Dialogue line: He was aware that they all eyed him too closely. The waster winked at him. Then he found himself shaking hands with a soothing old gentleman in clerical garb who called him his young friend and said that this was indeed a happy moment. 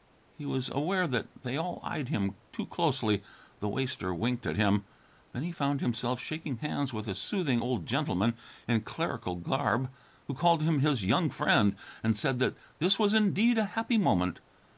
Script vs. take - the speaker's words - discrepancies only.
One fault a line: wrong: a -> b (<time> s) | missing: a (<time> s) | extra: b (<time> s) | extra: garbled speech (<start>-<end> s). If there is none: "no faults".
no faults